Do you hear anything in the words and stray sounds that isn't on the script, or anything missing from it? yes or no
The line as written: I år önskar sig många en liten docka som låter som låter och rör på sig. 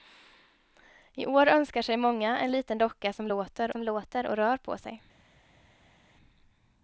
no